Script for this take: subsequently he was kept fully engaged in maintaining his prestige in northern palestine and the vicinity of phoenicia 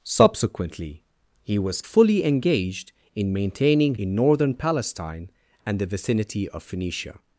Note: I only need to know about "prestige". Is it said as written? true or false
false